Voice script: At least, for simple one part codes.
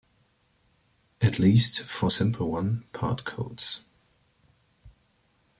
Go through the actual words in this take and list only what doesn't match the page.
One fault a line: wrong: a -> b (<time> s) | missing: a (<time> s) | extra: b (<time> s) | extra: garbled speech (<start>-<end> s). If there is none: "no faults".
no faults